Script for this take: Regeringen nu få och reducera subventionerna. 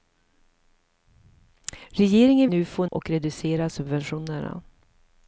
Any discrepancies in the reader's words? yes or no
no